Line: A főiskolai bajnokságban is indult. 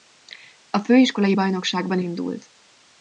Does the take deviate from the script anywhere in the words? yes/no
yes